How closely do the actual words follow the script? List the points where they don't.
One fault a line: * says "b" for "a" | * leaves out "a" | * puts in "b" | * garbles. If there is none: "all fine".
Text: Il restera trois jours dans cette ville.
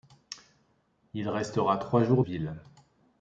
* leaves out "dans cette"